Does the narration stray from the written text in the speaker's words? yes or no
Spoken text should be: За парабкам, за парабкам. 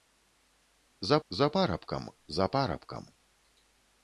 yes